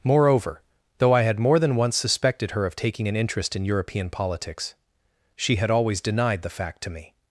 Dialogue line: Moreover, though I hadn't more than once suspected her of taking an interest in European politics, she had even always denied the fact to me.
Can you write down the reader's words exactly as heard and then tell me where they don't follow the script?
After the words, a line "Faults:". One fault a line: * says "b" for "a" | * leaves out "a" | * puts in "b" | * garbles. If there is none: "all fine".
Moreover, though I had more than once suspected her of taking an interest in European politics, she had always denied the fact to me.
Faults:
* says "had" for "hadn't"
* leaves out "even"